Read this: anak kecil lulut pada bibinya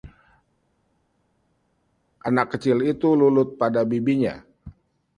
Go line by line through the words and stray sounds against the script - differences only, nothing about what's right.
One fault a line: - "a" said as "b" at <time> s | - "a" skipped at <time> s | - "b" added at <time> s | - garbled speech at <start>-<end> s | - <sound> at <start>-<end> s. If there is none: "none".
- "itu" added at 2.9 s